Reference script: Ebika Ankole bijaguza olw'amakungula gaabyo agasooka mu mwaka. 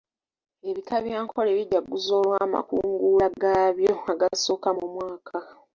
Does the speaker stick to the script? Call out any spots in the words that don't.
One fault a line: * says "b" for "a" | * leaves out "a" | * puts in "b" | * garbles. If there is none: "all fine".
* puts in "bya"